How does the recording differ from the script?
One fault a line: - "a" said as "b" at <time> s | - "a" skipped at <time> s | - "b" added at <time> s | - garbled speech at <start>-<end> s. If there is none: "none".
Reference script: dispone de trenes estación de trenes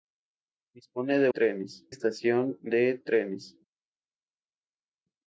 none